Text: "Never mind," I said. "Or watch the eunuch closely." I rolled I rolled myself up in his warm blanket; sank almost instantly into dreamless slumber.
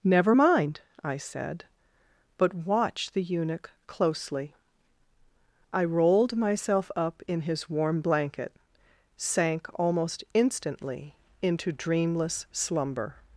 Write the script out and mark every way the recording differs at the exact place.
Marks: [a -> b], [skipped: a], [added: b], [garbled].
"Never mind," I said. ["Or -> But] watch the eunuch closely." I rolled [skipped: I rolled] myself up in his warm blanket; sank almost instantly into dreamless slumber.